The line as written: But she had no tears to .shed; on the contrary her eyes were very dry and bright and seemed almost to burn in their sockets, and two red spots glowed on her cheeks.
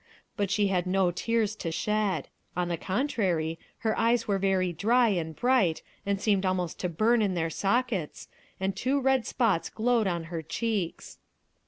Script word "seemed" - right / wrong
right